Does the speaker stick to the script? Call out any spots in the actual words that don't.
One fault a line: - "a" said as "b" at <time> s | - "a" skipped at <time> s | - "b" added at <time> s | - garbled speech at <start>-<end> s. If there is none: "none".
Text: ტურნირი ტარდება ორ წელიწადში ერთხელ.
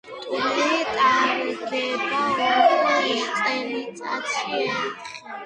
none